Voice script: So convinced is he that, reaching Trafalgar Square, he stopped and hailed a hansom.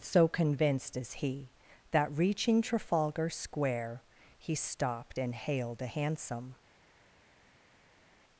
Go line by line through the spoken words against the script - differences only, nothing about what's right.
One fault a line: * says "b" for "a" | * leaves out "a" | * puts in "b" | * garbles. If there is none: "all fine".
all fine